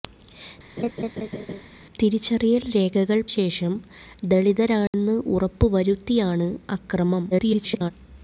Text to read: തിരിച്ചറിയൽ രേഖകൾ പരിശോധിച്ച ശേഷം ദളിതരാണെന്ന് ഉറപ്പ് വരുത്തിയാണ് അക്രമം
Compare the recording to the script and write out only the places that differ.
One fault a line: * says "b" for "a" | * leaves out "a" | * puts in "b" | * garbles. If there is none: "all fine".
* leaves out "പരിശോധിച്ച"
* garbles